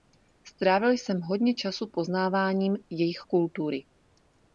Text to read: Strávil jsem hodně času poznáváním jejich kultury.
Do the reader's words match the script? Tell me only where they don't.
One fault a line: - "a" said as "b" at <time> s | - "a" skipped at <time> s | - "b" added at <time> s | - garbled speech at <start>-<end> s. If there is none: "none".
none